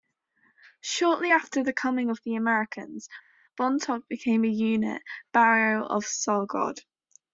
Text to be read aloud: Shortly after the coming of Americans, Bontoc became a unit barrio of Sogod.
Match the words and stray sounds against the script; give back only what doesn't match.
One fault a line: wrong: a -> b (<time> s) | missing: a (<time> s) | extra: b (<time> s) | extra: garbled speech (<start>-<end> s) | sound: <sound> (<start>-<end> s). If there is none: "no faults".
extra: the (2.2 s)